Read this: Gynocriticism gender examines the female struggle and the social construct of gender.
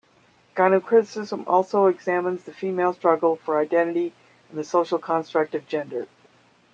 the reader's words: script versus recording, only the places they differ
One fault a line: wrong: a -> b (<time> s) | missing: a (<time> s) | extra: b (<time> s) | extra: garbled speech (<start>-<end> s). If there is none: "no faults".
wrong: gender -> also (1.4 s)
extra: for identity (3.4 s)